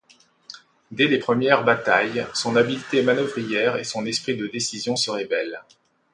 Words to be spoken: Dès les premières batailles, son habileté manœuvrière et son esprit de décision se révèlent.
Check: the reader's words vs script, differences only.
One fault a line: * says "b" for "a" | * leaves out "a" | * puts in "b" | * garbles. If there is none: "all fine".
all fine